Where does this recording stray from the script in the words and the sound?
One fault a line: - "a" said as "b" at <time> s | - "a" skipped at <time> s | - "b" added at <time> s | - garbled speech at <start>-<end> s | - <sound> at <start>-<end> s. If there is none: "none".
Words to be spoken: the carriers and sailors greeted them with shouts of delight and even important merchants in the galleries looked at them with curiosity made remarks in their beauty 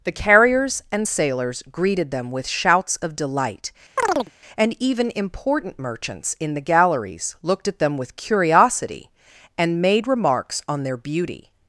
- chirp at 4.0-4.3 s
- "and" added at 9.6 s
- "in" said as "on" at 10.7 s